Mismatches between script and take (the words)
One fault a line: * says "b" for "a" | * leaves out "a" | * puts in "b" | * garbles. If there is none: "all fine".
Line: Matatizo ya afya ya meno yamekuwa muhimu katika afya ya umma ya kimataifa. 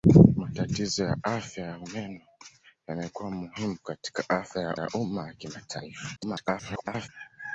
* puts in "ya"
* garbles